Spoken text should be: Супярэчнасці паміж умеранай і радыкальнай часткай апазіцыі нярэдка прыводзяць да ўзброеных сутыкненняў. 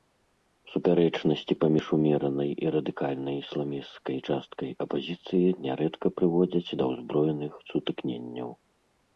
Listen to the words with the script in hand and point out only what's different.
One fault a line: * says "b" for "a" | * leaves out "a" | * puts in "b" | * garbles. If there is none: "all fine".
* puts in "ісламісцкай"